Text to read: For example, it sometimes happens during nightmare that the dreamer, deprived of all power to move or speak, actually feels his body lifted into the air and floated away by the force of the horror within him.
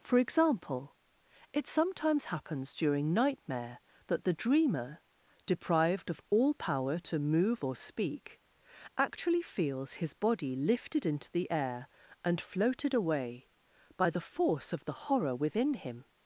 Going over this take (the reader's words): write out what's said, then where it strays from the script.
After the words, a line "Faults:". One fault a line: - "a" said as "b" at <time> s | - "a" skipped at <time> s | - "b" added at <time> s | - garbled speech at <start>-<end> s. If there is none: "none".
For example, it sometimes happens during nightmare that the dreamer, deprived of all power to move or speak, actually feels his body lifted into the air and floated away by the force of the horror within him.
Faults:
none